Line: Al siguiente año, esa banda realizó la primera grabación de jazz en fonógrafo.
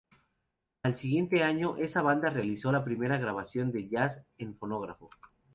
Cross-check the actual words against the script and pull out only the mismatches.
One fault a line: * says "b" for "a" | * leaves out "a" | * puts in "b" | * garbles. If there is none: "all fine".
all fine